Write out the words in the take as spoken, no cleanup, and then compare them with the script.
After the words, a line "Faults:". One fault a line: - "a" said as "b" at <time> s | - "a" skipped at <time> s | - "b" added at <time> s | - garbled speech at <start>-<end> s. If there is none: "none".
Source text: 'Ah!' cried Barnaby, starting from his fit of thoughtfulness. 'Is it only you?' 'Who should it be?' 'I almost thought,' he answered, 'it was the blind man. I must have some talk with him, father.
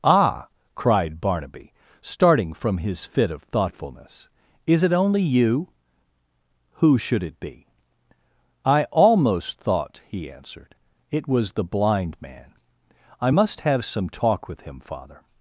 'Ah!' cried Barnaby, starting from his fit of thoughtfulness. 'Is it only you?' 'Who should it be?' 'I almost thought,' he answered, 'it was the blind man. I must have some talk with him, father.
Faults:
none